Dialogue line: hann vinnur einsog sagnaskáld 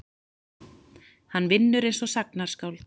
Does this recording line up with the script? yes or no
yes